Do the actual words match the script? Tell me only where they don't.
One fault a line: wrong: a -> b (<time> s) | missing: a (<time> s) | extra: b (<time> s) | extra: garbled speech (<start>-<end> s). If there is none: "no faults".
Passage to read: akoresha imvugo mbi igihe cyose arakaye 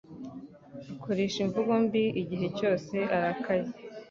no faults